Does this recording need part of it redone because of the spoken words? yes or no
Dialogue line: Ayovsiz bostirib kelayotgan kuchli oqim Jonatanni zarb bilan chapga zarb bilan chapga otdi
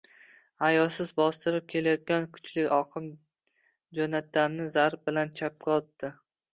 yes